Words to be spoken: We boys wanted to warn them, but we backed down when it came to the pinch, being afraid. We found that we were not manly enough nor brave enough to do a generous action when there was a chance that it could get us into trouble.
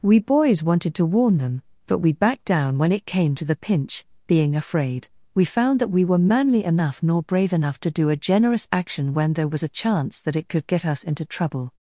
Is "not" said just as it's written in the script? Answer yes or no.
no